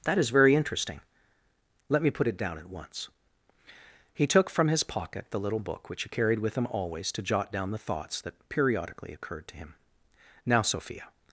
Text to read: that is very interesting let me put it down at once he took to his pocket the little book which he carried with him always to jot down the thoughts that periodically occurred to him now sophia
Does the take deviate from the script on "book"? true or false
false